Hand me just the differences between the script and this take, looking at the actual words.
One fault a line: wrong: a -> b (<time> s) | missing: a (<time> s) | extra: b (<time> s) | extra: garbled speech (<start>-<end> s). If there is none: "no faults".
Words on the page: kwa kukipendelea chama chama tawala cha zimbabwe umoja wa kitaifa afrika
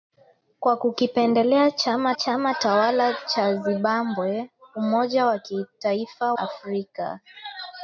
no faults